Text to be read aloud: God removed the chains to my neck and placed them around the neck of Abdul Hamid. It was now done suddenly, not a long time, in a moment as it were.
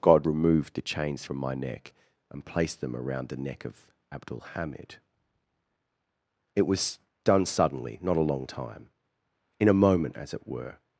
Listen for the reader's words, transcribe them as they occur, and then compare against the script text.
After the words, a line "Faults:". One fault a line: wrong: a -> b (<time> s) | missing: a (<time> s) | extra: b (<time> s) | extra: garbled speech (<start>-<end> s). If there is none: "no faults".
God removed the chains from my neck and placed them around the neck of Abdul Hamid. It was done suddenly, not a long time, in a moment as it were.
Faults:
wrong: to -> from (1.2 s)
missing: now (7.0 s)